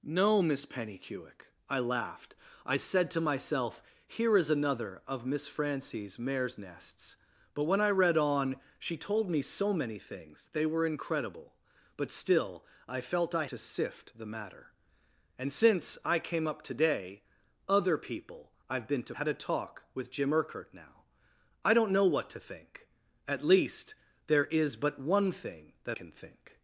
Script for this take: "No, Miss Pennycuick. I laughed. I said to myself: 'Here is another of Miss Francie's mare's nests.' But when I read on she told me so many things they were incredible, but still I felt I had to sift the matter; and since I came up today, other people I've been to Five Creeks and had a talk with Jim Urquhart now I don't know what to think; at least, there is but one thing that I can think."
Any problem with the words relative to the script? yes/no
yes